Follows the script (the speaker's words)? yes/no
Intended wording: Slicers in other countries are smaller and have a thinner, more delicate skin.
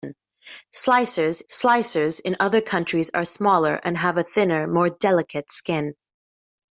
no